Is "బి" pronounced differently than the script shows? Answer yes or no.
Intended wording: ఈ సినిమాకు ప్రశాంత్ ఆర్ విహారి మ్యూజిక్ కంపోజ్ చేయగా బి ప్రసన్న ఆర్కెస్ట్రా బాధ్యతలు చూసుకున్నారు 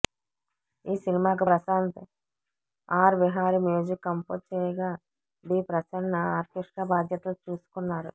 no